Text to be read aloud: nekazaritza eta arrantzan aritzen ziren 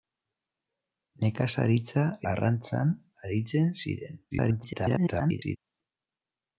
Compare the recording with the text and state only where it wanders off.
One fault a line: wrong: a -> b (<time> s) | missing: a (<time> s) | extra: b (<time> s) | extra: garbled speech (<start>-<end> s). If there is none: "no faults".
missing: eta (2.0 s)
extra: garbled speech (4.3-5.6 s)